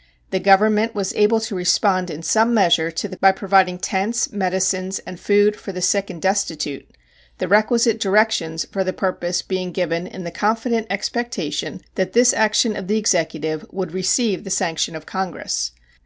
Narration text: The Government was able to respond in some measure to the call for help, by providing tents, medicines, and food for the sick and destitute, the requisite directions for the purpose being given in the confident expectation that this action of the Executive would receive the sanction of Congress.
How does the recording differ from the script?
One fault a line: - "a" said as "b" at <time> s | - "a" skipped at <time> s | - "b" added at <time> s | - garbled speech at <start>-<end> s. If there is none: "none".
- "call for help" skipped at 3.1 s